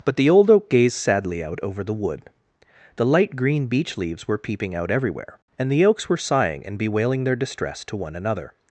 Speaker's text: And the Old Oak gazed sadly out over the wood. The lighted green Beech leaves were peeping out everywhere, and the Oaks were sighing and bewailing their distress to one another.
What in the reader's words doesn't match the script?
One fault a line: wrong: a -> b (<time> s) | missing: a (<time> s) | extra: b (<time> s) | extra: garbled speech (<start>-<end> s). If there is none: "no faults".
wrong: And -> But (0.0 s)
wrong: lighted -> light (3.0 s)